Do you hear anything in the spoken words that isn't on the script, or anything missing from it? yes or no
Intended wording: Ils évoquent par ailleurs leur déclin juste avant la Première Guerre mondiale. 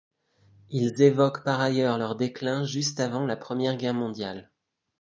no